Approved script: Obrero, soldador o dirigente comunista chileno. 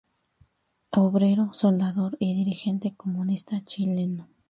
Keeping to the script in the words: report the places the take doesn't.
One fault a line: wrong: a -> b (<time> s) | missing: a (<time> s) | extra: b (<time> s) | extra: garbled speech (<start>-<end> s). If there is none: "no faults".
wrong: o -> y (2.2 s)